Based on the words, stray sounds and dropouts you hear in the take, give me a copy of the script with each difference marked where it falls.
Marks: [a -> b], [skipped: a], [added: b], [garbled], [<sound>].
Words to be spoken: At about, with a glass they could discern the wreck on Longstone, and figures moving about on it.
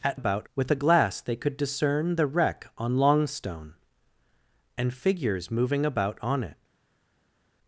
At about, with a glass they could discern the wreck on Longstone, and figures moving about on it.